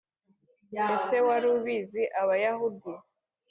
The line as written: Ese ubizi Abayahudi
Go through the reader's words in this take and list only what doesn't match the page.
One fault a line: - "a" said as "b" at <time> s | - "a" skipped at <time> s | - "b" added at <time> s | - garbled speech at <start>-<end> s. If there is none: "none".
- "wari" added at 1.3 s